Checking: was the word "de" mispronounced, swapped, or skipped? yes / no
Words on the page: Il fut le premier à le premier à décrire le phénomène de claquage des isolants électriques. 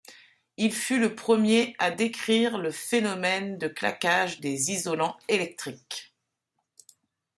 no